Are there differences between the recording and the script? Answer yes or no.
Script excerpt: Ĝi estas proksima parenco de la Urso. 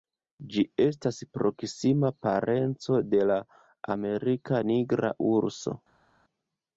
yes